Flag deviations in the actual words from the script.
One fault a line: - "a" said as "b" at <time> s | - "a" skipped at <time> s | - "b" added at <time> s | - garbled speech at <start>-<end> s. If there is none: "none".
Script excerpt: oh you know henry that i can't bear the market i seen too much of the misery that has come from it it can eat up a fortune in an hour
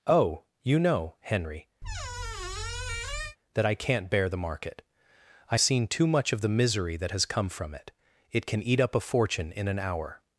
none